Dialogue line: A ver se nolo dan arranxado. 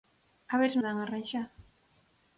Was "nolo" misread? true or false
true